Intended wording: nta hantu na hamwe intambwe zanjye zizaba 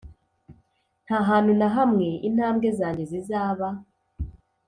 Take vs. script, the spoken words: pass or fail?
pass